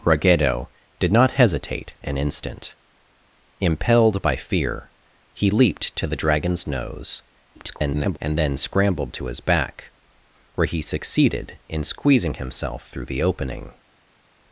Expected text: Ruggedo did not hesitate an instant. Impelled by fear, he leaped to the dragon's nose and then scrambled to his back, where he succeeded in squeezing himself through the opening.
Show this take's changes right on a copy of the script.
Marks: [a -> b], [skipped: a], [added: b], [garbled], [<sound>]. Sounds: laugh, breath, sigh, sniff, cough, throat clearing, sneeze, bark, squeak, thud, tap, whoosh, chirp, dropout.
Ruggedo did not hesitate an instant. Impelled by fear, he leaped to the dragon's nose [garbled] and then scrambled to his back, where he succeeded in squeezing himself through the opening.